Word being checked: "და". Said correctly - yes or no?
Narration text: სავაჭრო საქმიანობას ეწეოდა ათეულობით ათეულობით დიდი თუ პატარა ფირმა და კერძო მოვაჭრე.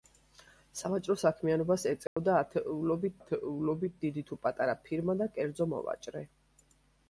yes